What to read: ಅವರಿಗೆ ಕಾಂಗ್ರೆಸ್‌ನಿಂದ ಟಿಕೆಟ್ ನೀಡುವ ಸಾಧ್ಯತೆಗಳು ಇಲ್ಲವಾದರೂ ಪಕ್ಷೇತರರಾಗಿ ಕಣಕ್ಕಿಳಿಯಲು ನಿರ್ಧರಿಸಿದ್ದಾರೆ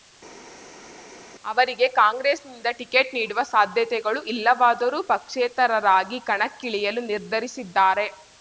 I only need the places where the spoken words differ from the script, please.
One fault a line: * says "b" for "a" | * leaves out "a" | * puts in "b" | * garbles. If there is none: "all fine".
all fine